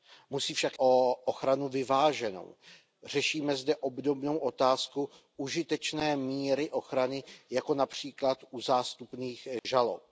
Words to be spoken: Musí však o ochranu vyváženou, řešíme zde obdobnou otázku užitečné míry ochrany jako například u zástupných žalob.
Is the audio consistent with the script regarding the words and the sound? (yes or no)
no